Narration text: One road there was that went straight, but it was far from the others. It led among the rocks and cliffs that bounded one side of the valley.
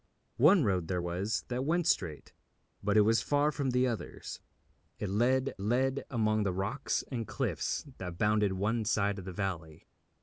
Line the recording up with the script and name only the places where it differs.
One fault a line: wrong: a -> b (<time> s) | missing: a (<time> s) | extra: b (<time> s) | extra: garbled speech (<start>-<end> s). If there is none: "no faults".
extra: led (5.6 s)